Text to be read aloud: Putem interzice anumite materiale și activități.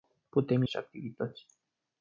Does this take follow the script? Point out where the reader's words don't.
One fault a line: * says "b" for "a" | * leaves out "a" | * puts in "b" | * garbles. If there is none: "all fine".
* leaves out "interzice anumite materiale"